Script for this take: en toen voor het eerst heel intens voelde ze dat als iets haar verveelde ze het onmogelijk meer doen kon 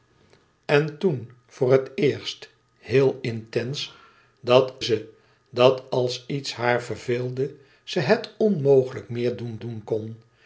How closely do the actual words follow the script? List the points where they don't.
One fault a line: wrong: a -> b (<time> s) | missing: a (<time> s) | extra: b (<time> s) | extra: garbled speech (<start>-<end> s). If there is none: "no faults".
wrong: voelde -> dat (4.4 s)
extra: doen (9.6 s)